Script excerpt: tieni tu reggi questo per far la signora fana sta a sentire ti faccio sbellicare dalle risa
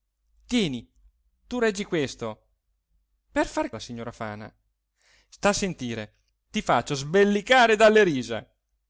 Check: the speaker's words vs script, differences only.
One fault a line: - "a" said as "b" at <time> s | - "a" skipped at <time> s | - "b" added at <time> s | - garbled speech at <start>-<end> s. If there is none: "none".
none